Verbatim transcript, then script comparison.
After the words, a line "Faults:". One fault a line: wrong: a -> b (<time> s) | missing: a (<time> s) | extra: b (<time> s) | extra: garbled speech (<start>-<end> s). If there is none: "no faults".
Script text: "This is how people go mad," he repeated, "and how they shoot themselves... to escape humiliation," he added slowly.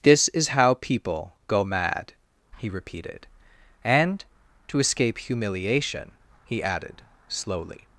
"This is how people go mad," he repeated, "and... to escape humiliation," he added slowly.
Faults:
missing: how they shoot themselves (4.2 s)